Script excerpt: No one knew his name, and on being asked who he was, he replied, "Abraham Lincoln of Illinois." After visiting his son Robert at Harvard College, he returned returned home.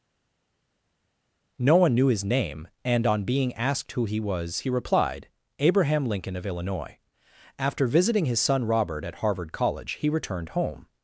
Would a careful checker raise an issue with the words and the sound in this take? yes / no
yes